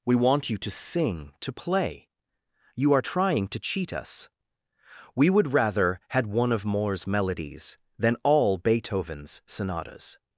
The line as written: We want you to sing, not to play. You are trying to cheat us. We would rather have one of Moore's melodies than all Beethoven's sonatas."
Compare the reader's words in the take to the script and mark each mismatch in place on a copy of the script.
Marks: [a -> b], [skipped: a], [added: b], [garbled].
We want you to sing, [skipped: not] to play. You are trying to cheat us. We would rather [have -> had] one of Moore's melodies than all Beethoven's sonatas."